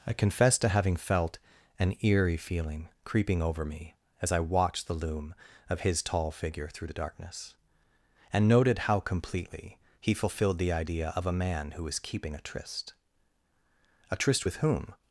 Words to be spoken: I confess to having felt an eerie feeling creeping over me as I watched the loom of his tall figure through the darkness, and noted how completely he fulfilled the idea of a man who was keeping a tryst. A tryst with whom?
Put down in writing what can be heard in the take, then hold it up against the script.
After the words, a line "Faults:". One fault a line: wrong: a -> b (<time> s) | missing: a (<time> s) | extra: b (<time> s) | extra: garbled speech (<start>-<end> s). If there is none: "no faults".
I confess to having felt an eerie feeling creeping over me as I watched the loom of his tall figure through the darkness, and noted how completely he fulfilled the idea of a man who was keeping a tryst. A tryst with whom?
Faults:
no faults